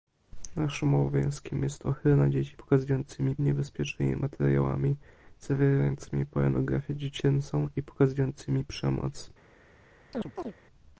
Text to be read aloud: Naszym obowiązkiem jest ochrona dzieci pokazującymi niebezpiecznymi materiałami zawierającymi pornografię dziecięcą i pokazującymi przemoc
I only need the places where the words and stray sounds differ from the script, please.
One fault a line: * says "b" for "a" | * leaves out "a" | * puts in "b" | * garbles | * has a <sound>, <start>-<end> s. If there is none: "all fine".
* has a chirp, 10.1-10.5 s